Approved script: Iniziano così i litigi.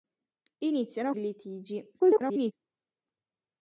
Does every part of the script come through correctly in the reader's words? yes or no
no